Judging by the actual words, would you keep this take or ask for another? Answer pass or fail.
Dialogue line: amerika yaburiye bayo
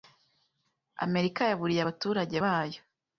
fail